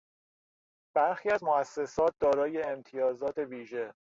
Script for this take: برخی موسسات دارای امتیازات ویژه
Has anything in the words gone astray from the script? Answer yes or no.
yes